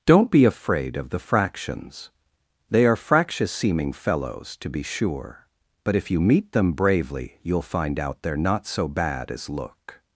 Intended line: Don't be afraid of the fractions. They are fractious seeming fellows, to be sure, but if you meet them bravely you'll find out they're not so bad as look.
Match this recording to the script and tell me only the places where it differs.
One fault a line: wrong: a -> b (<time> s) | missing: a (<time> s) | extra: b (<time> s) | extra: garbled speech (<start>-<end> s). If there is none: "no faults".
no faults